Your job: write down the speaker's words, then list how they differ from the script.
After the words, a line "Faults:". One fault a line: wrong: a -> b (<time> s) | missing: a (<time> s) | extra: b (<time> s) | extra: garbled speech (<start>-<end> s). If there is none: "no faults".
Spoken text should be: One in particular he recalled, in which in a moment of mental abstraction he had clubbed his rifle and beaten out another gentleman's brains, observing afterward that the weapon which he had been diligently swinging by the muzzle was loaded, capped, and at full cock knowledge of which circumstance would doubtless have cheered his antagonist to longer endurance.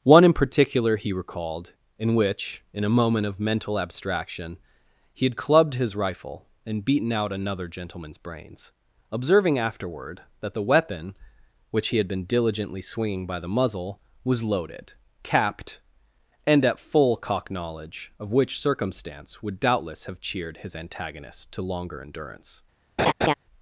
One in particular he recalled, in which in a moment of mental abstraction he had clubbed his rifle and beaten out another gentleman's brains, observing afterward that the weapon which he had been diligently swinging by the muzzle was loaded, capped, and at full cock knowledge of which circumstance would doubtless have cheered his antagonist to longer endurance.
Faults:
no faults